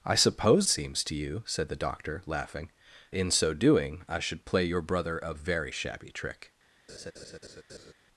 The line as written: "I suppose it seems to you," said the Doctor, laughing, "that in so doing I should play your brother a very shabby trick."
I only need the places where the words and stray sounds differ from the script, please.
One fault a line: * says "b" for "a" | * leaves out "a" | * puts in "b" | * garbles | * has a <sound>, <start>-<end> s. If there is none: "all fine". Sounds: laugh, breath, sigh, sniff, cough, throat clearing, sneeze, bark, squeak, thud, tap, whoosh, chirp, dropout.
* leaves out "it"
* leaves out "that"
* has a laugh, 6.9-7.9 s